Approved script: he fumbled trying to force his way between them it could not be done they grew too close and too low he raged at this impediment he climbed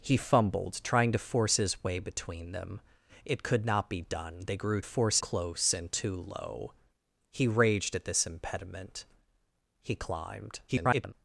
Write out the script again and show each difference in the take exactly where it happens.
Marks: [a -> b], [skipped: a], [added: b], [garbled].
he fumbled trying to force his way between them it could not be done they grew [too -> force] close and too low he raged at this impediment he climbed [garbled]